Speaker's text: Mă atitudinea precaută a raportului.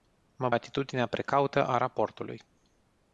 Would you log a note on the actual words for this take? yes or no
no